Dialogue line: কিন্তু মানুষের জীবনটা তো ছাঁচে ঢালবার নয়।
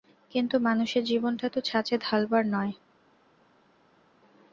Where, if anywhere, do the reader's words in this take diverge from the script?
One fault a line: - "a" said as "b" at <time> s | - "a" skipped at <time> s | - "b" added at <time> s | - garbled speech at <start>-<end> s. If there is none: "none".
none